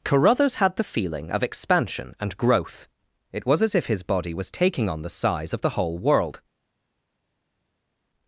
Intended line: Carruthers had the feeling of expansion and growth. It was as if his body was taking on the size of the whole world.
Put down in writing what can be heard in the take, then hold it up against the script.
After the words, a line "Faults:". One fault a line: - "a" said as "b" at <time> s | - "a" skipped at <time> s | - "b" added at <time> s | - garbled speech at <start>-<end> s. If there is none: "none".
Carruthers had the feeling of expansion and growth. It was as if his body was taking on the size of the whole world.
Faults:
none